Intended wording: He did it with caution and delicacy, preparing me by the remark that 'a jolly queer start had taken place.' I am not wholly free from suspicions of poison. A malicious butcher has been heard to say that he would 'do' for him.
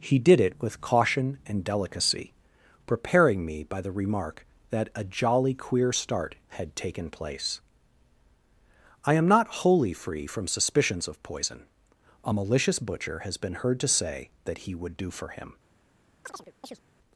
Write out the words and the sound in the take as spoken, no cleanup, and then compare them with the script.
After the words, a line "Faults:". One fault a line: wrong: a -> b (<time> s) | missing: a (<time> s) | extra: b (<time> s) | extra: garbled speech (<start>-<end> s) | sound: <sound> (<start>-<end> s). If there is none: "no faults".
He did it with caution and delicacy, preparing me by the remark that 'a jolly queer start had taken place.' I am not wholly free from suspicions of poison. A malicious butcher has been heard to say that he would 'do' for him.
Faults:
sound: chirp (16.2-16.8 s)